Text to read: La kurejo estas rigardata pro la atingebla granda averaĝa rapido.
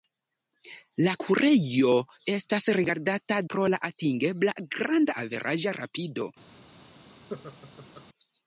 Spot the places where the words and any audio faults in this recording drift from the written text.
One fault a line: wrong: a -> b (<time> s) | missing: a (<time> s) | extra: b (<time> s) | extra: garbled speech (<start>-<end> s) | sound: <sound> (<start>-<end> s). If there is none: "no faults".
sound: laugh (7.3-8.1 s)